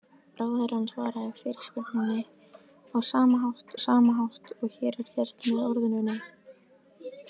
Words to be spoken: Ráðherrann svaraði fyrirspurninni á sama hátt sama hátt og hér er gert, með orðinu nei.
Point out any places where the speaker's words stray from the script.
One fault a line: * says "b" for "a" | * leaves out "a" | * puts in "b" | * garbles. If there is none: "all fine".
all fine